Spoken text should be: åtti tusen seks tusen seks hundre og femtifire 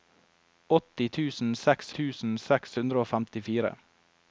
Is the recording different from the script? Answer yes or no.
no